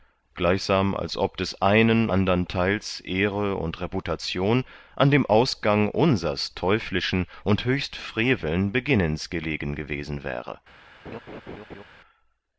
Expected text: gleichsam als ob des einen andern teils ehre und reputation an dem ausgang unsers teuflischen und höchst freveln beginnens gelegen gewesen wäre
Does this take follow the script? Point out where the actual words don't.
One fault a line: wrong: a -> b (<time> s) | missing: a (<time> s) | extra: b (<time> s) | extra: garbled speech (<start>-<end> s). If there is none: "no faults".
no faults